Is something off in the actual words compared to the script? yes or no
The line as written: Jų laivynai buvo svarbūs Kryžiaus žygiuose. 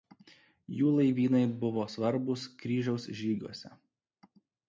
no